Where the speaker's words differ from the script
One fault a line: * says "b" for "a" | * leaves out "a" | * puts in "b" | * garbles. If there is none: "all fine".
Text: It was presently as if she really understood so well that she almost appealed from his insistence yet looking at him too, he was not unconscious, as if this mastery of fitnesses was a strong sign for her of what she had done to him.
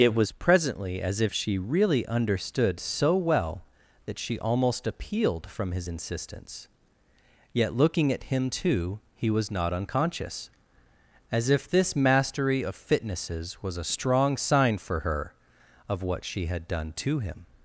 all fine